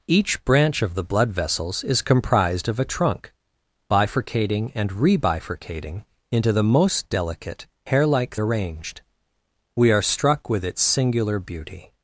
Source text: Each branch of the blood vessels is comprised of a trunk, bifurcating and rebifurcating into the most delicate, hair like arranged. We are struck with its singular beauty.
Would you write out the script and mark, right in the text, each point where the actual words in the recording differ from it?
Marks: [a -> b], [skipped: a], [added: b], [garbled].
Each branch of the blood vessels is comprised of a trunk, bifurcating and rebifurcating into the most delicate, hair like arranged. We are struck with its singular beauty.